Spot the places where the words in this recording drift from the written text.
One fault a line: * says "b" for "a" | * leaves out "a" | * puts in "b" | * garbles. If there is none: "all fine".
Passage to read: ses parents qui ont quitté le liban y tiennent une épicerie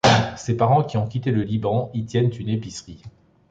all fine